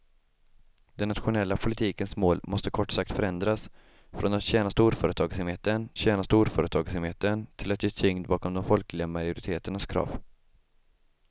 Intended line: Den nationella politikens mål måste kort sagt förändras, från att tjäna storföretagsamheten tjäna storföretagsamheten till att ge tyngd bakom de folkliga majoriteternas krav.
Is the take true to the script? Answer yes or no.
yes